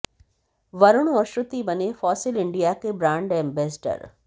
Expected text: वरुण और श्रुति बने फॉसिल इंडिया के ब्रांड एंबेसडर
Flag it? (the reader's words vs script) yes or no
no